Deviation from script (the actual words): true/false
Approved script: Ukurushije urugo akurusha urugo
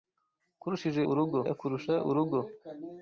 false